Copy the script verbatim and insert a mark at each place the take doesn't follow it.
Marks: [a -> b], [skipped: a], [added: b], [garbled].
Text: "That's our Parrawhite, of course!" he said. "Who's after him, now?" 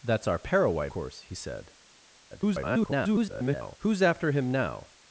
"That's our Parrawhite, [skipped: of] course!" he said. [garbled] "Who's after him, now?"